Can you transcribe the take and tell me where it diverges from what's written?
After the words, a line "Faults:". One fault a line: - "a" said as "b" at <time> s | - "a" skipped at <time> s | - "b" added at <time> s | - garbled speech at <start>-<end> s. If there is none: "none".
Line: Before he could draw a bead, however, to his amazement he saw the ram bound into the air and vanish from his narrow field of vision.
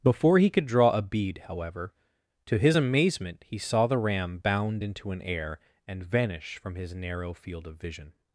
Before he could draw a bead, however, to his amazement he saw the ram bound into an air and vanish from his narrow field of vision.
Faults:
- "the" said as "an" at 5.1 s